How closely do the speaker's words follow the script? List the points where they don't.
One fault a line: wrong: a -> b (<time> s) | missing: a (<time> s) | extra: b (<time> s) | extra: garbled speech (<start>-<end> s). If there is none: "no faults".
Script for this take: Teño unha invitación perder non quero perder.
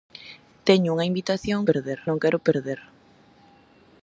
no faults